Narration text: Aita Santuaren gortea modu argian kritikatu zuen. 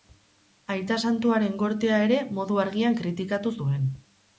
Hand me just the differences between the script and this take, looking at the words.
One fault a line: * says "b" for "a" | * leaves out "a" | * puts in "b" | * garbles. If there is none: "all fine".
* puts in "ere"